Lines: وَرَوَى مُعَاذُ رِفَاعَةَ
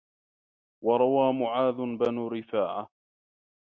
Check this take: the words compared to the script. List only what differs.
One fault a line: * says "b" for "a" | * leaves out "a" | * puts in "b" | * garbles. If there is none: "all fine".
* puts in "بْنُ"